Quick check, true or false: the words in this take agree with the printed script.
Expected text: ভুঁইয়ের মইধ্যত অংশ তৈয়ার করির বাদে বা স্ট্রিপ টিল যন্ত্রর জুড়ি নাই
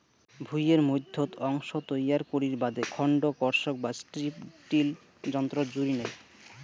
false